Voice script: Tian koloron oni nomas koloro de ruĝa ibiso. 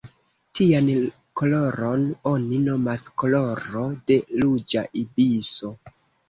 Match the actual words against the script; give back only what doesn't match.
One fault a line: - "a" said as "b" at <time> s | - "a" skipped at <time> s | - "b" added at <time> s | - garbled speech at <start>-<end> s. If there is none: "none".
none